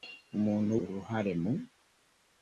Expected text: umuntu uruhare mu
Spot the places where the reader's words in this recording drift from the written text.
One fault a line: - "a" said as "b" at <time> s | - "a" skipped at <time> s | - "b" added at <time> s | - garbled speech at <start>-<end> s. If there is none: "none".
none